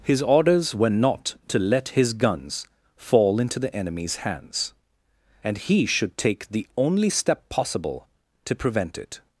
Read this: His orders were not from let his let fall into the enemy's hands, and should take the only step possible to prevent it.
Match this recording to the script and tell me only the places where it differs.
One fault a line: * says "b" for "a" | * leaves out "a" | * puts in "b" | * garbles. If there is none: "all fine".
* says "to" for "from"
* says "guns" for "let"
* puts in "he"